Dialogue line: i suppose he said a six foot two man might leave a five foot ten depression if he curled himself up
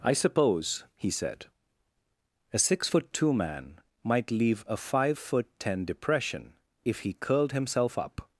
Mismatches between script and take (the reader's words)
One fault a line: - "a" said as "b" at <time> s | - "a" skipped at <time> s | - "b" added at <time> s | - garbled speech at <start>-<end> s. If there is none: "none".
none